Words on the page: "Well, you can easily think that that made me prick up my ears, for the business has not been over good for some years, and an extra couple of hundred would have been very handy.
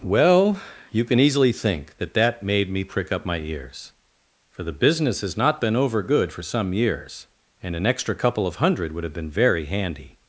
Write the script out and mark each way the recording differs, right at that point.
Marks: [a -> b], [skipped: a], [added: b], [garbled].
"Well, you can easily think that that made me prick up my ears, for the business has not been over good for some years, and an extra couple of hundred would have been very handy.